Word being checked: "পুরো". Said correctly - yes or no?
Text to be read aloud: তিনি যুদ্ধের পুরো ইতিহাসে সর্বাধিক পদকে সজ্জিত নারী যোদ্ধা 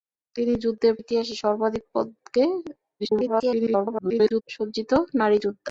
no